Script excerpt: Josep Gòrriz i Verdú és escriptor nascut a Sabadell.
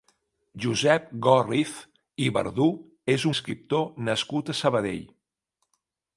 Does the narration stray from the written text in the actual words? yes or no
no